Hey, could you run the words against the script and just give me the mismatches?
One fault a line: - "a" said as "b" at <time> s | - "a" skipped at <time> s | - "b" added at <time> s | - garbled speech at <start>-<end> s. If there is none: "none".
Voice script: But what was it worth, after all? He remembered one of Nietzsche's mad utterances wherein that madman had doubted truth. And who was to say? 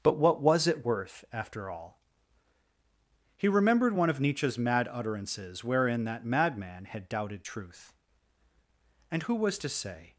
none